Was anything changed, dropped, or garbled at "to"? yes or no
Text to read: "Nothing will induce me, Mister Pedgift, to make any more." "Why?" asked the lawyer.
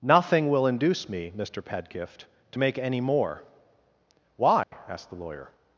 no